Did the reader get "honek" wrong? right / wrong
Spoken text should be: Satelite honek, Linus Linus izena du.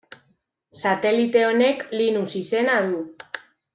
right